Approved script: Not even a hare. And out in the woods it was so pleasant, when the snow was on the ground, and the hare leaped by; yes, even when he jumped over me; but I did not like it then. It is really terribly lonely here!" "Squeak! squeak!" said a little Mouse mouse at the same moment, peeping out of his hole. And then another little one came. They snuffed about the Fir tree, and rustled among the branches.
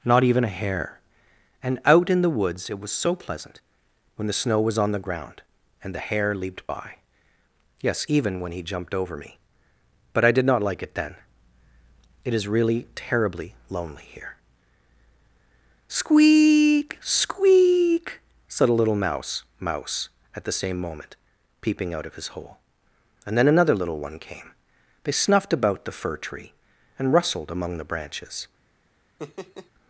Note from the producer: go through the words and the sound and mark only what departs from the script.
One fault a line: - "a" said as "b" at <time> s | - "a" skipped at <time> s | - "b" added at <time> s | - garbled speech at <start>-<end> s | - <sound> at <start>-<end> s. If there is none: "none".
- laugh at 29.2-29.7 s